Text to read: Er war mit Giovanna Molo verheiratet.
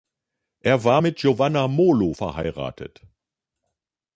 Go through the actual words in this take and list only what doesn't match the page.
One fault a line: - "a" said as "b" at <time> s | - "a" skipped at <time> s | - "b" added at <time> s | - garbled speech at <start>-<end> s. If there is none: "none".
none